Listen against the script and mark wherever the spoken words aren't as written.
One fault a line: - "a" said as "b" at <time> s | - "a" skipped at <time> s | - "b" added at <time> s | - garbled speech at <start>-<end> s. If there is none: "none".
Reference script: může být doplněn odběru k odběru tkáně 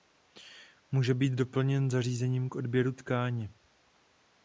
- "odběru" said as "zařízením" at 1.9 s